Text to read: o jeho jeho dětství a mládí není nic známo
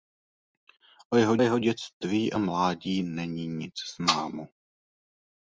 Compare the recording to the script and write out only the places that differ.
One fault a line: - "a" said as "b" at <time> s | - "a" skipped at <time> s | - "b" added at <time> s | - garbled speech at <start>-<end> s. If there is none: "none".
none